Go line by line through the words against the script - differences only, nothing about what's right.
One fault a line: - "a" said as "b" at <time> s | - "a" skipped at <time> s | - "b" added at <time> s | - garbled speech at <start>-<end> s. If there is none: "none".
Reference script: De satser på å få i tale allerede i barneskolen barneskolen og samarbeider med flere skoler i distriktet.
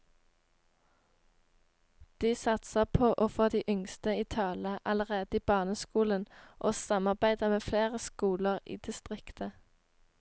- "de yngste" added at 3.5 s
- "barneskolen" skipped at 6.3 s